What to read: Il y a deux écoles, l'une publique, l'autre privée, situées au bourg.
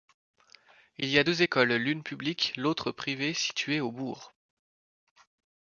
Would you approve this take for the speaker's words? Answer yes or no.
yes